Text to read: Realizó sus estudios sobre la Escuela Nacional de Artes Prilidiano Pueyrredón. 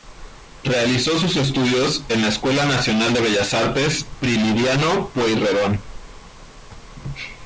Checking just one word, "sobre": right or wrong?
wrong